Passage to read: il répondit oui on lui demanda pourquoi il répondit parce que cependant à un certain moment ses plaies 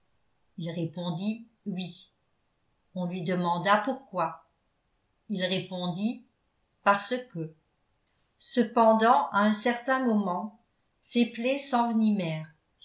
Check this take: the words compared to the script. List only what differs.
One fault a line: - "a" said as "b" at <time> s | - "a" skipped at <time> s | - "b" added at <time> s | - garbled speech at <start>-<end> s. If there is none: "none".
none